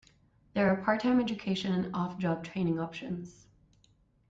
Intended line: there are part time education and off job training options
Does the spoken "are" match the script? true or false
true